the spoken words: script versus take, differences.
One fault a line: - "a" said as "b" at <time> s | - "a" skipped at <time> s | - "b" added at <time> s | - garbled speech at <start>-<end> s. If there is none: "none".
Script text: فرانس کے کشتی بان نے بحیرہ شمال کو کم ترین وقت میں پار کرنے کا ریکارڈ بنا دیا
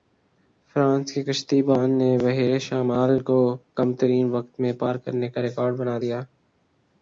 none